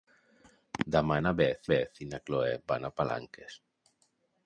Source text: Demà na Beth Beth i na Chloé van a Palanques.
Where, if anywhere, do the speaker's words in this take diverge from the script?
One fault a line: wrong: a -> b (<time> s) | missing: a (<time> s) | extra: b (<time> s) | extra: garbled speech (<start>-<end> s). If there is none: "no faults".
no faults